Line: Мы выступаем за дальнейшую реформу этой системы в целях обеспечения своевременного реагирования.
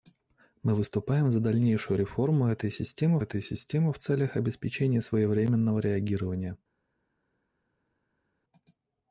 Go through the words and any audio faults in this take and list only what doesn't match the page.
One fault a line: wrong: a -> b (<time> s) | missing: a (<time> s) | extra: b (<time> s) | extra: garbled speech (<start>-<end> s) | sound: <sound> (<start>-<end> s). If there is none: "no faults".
extra: этой системы (3.2 s)